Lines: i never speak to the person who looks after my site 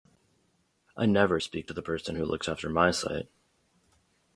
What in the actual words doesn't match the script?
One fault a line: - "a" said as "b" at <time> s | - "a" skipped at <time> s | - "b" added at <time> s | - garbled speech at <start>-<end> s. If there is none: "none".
none